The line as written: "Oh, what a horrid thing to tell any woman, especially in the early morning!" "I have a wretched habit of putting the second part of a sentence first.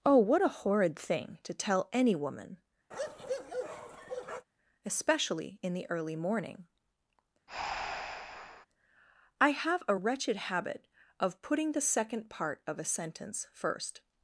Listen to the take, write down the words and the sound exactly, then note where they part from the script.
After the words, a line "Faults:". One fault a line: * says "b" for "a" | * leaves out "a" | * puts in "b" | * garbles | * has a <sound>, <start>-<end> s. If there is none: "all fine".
"Oh, what a horrid thing to tell any woman, especially in the early morning!" "I have a wretched habit of putting the second part of a sentence first.
Faults:
* has a bark, 2.9-4.5 s
* has a breath, 7.5-8.7 s